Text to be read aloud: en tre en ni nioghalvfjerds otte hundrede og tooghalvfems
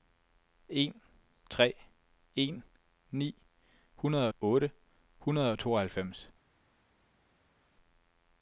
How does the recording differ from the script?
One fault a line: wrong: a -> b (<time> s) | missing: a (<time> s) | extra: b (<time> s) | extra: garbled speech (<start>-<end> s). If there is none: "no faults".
wrong: nioghalvfjerds -> hundrede (4.0 s)